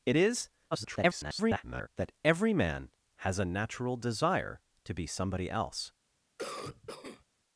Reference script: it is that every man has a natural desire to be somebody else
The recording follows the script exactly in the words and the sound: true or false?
false